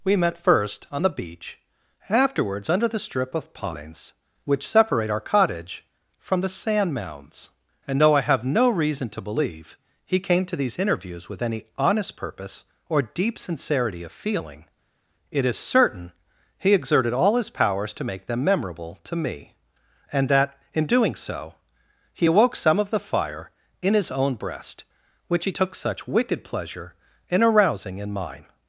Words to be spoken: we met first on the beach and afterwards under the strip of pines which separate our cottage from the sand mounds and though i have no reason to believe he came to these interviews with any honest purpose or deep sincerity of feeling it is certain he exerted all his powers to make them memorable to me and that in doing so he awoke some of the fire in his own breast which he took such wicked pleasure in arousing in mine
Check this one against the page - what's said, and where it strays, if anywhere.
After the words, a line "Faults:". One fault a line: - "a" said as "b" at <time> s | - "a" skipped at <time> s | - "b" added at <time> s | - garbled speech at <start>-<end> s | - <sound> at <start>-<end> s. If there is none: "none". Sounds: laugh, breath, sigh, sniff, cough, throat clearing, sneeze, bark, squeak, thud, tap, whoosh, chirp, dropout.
we met first on the beach afterwards under the strip of pines which separate our cottage from the sand mounds and though i have no reason to believe he came to these interviews with any honest purpose or deep sincerity of feeling it is certain he exerted all his powers to make them memorable to me and that in doing so he awoke some of the fire in his own breast which he took such wicked pleasure in arousing in mine
Faults:
- "and" skipped at 1.6 s